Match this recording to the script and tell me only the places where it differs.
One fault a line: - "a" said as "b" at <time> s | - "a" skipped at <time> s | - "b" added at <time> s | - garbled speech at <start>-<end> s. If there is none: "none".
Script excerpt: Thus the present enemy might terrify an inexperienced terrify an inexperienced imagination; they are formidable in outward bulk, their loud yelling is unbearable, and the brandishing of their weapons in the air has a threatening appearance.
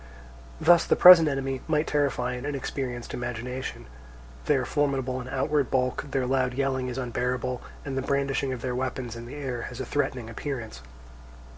- "terrify an inexperienced" skipped at 3.1 s